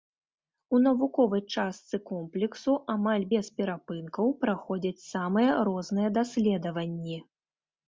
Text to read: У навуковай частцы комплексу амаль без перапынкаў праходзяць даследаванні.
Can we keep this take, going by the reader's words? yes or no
no